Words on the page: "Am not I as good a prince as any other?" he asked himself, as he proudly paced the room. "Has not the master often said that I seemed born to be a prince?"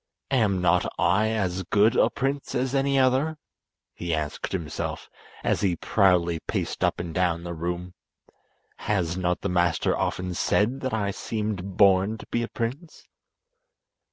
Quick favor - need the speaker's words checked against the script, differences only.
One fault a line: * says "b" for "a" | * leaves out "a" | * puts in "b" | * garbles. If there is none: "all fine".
* puts in "up and down"